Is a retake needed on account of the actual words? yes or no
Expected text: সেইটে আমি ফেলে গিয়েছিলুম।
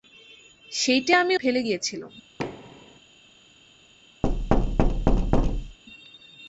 no